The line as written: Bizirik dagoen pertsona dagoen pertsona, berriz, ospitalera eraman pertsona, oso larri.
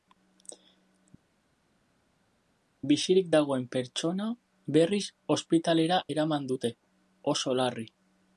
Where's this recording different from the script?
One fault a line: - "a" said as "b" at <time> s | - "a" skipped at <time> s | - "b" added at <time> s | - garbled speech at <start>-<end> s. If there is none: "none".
- "dagoen pertsona" skipped at 4.3 s
- "pertsona" said as "dute" at 6.5 s